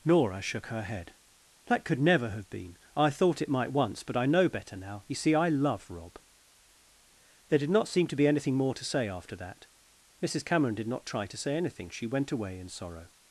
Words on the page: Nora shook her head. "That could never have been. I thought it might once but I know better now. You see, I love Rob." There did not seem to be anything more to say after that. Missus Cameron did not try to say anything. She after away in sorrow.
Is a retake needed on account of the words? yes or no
yes